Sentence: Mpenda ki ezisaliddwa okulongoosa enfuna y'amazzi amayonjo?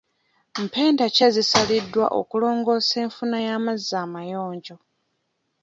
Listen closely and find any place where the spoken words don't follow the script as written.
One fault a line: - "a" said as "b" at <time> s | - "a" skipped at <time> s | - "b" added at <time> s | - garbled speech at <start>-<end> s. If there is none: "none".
none